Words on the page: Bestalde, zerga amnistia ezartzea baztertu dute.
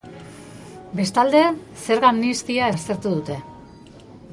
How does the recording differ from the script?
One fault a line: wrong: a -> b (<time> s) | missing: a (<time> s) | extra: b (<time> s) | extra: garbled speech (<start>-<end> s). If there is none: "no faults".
missing: ezartzea (2.7 s)